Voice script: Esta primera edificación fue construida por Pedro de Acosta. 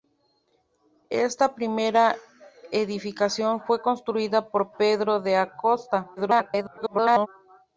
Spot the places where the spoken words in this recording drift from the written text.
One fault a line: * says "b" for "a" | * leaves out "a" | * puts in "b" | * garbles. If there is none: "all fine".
* garbles